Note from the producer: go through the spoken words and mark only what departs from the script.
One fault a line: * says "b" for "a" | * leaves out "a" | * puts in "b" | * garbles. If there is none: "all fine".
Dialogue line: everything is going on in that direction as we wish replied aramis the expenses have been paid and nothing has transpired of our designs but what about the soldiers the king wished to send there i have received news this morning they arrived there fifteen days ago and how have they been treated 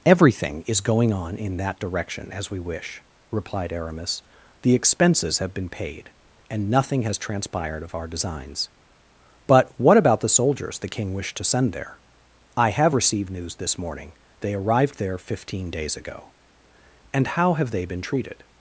all fine